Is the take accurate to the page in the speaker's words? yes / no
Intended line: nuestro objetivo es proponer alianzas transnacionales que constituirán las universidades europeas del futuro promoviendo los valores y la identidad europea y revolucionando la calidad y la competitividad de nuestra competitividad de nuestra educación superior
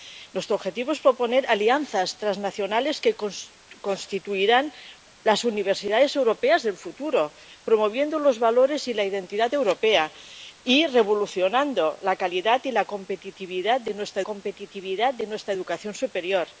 yes